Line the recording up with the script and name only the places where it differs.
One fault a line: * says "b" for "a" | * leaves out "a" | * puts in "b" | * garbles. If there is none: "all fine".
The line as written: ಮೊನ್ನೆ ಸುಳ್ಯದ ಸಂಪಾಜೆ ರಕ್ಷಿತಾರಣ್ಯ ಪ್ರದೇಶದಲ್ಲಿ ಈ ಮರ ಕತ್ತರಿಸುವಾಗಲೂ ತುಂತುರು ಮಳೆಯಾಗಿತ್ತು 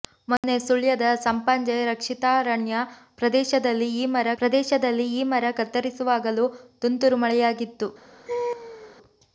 * puts in "ಪ್ರದೇಶದಲ್ಲಿ ಈ ಮರ"